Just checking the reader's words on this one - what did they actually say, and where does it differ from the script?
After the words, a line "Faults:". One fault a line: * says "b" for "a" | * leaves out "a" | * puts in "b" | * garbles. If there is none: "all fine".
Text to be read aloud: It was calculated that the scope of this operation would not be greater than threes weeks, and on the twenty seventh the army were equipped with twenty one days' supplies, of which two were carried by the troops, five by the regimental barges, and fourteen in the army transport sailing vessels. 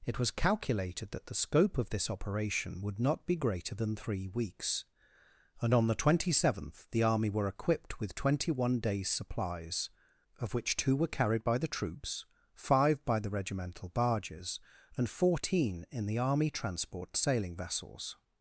It was calculated that the scope of this operation would not be greater than three weeks, and on the twenty seventh the army were equipped with twenty one days' supplies, of which two were carried by the troops, five by the regimental barges, and fourteen in the army transport sailing vessels.
Faults:
* says "three" for "threes"